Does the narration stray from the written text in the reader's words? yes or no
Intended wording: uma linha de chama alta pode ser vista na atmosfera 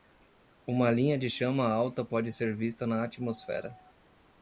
no